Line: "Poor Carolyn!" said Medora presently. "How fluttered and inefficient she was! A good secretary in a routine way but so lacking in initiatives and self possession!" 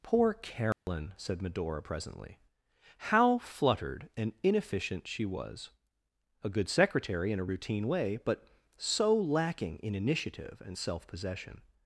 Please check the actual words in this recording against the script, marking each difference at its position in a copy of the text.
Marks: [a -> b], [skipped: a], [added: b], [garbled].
"Poor Carolyn!" said Medora presently. "How fluttered and inefficient she was! A good secretary in a routine way but so lacking in [initiatives -> initiative] and self possession!"